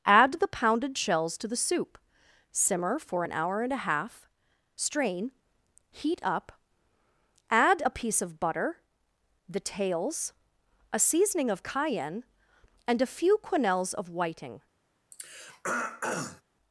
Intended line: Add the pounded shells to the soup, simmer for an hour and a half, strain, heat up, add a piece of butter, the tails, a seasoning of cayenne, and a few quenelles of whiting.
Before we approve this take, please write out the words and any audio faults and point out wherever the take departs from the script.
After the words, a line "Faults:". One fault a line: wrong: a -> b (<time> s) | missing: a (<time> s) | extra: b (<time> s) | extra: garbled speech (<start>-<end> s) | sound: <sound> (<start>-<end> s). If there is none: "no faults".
Add the pounded shells to the soup, simmer for an hour and a half, strain, heat up, add a piece of butter, the tails, a seasoning of cayenne, and a few quenelles of whiting.
Faults:
sound: throat clearing (15.1-16.4 s)